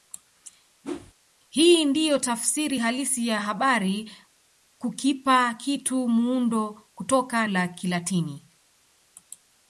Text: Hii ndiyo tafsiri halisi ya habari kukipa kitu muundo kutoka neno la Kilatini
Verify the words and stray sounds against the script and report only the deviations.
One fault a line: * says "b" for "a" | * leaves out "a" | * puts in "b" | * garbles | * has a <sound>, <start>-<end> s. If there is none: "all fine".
* has a whoosh, 0.8-1.1 s
* leaves out "neno"